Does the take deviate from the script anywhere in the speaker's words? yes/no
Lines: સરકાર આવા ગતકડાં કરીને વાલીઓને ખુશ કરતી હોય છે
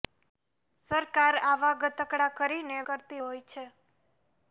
yes